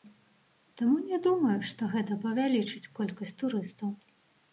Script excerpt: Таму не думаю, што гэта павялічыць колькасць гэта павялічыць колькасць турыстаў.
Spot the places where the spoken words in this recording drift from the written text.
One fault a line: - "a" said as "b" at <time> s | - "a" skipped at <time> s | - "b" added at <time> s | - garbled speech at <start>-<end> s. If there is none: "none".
- "гэта павялічыць колькасць" skipped at 3.4 s